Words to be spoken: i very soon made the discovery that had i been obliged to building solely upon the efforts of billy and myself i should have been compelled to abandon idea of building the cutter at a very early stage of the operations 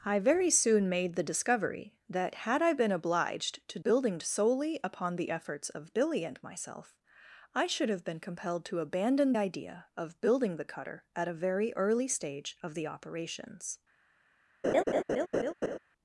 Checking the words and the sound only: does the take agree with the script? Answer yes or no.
no